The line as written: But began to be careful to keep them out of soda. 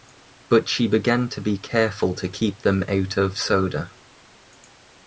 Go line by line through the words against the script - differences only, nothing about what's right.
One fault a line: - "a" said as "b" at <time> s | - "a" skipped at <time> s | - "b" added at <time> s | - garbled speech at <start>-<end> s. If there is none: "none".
- "she" added at 0.7 s